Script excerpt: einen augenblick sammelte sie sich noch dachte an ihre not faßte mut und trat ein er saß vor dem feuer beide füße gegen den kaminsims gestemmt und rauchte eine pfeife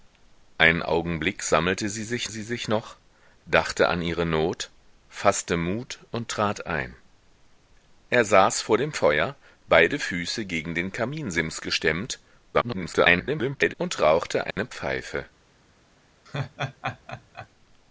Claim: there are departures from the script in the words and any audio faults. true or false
true